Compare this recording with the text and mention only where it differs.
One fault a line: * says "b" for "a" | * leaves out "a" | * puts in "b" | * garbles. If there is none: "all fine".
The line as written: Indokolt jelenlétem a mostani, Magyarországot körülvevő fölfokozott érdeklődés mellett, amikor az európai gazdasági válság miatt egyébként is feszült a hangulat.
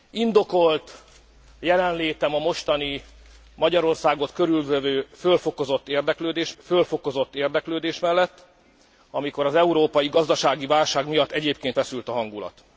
* puts in "fölfokozott érdeklődés"
* leaves out "is"